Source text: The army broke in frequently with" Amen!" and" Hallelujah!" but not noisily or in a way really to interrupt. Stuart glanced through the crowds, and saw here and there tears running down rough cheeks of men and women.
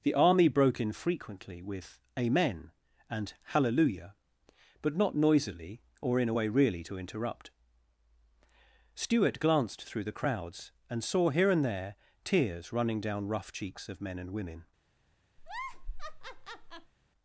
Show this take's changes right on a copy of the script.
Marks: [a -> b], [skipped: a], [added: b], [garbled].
The army broke in frequently with" Amen!" and" Hallelujah!" but not noisily or in a way really to interrupt. Stuart glanced through the crowds, and saw here and there tears running down rough cheeks of men and women.